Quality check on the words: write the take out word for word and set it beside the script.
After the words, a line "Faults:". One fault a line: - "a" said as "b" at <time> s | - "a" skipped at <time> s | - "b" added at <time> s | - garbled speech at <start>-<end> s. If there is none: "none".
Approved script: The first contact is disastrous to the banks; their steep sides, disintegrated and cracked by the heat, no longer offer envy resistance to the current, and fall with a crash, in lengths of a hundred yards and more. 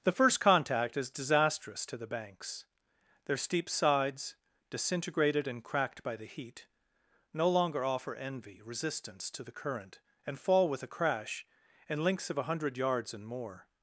The first contact is disastrous to the banks; their steep sides, disintegrated and cracked by the heat, no longer offer envy resistance to the current, and fall with a crash, in lengths of a hundred yards and more.
Faults:
none